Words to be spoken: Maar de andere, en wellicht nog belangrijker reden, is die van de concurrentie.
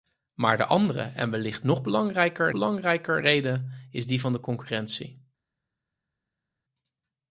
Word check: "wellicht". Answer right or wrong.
right